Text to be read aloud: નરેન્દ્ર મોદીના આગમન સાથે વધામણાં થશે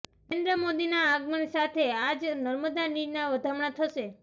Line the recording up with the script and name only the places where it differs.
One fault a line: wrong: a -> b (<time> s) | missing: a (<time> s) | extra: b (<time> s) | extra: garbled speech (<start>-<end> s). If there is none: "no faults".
extra: આજ નર્મદા નીરના (2.0 s)